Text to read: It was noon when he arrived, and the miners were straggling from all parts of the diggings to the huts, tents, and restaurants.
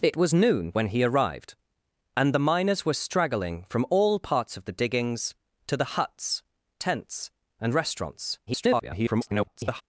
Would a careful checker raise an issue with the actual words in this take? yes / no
yes